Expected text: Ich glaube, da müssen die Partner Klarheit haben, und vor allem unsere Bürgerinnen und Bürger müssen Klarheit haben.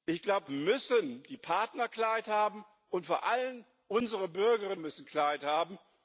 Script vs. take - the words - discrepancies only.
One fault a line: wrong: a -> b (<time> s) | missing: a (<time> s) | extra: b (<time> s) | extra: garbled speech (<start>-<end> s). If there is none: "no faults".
missing: da (0.5 s)
missing: und Bürger (4.8 s)